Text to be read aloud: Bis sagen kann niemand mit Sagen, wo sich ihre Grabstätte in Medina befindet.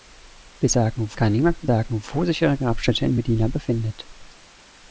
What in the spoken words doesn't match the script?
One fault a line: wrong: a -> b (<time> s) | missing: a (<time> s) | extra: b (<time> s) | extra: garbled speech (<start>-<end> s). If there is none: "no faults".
no faults